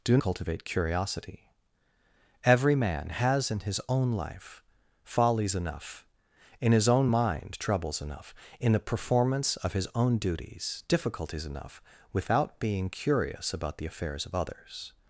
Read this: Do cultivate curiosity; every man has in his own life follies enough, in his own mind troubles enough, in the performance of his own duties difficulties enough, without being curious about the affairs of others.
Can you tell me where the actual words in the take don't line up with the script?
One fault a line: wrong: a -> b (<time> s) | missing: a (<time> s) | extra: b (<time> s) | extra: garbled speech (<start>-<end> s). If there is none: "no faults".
no faults